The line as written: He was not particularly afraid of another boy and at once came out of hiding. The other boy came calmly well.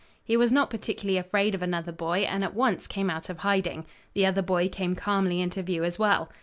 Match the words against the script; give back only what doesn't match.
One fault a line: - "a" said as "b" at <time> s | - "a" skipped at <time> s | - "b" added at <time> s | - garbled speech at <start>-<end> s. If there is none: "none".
- "into view as" added at 5.4 s